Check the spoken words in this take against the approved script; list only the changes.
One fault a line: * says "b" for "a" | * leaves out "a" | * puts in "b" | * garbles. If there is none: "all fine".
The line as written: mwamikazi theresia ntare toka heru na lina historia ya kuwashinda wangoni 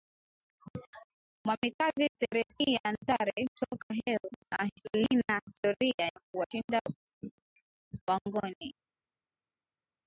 all fine